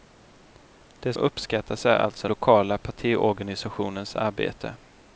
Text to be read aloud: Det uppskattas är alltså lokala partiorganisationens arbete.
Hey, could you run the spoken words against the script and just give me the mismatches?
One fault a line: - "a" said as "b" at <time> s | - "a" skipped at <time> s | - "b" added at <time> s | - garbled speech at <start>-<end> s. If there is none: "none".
none